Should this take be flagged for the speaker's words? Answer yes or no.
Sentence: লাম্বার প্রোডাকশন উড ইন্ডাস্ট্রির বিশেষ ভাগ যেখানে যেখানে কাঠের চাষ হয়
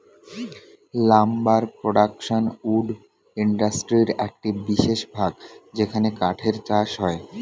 yes